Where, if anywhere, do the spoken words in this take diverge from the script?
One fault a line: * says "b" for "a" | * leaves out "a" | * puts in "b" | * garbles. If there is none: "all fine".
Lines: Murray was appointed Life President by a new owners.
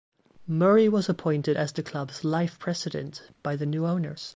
* puts in "as the club's"
* says "the" for "a"